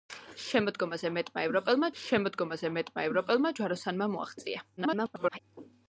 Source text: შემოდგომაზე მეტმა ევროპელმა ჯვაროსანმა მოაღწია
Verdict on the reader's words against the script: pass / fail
fail